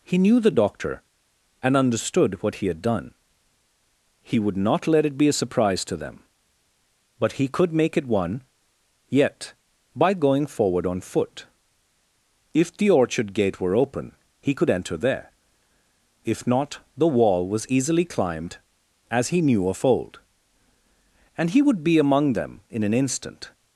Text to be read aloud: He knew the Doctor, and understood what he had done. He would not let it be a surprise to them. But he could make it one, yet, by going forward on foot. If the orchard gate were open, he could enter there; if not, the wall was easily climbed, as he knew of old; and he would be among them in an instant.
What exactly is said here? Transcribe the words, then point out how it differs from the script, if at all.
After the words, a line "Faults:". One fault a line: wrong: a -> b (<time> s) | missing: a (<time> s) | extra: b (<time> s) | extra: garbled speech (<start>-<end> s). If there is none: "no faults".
He knew the Doctor, and understood what he had done. He would not let it be a surprise to them. But he could make it one, yet, by going forward on foot. If the orchard gate were open, he could enter there; if not, the wall was easily climbed, as he knew of old; and he would be among them in an instant.
Faults:
no faults